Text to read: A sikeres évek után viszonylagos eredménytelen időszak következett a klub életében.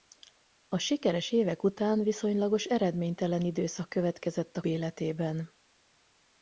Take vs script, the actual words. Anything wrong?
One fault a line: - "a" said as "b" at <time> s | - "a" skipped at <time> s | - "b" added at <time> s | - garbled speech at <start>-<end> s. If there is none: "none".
- "klub" skipped at 4.6 s